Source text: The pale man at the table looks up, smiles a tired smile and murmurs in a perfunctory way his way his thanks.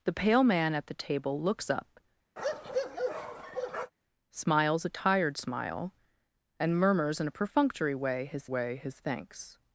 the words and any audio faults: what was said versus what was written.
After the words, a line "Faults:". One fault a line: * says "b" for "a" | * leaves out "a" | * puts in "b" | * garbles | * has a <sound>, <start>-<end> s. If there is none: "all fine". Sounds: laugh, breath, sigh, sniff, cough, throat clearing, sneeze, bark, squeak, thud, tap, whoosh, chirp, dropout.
The pale man at the table looks up, smiles a tired smile and murmurs in a perfunctory way his way his thanks.
Faults:
* has a bark, 2.4-3.9 s